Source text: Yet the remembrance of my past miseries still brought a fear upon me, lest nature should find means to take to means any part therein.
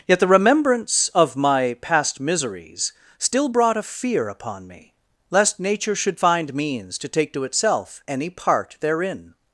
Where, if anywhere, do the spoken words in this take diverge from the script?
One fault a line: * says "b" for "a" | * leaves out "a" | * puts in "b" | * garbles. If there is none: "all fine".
* says "itself" for "means"